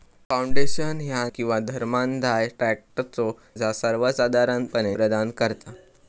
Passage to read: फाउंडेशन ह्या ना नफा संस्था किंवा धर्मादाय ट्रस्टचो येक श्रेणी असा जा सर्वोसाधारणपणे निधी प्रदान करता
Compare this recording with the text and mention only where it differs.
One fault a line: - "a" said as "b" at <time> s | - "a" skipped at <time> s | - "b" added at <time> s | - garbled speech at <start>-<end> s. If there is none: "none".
- "ना नफा संस्था" skipped at 1.3 s
- "येक श्रेणी असा" skipped at 3.3 s
- "निधी" skipped at 5.0 s